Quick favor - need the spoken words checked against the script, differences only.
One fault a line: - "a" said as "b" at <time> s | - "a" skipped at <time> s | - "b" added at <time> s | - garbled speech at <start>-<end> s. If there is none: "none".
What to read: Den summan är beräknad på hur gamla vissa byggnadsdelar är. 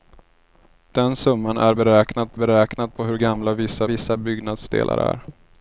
- "beräknad" added at 2.3 s
- "vissa" added at 3.8 s